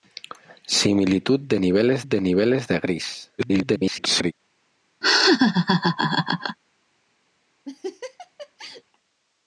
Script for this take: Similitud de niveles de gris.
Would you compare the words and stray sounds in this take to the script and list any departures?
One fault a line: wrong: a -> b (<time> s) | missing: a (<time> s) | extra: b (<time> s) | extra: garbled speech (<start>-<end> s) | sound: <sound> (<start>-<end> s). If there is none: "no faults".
extra: niveles de (2.2 s)
extra: garbled speech (3.4-4.3 s)
sound: laugh (5.0-6.6 s)
sound: laugh (7.7-8.8 s)